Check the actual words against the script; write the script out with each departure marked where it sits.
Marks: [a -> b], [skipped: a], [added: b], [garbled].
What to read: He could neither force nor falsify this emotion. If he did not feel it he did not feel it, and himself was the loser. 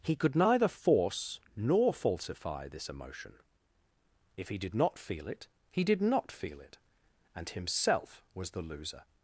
He could neither force nor falsify this emotion. If he did not feel it he did not feel it, and himself was the loser.